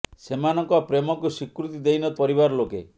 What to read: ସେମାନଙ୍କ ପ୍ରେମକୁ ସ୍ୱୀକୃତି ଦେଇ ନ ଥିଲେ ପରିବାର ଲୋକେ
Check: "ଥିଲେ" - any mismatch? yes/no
yes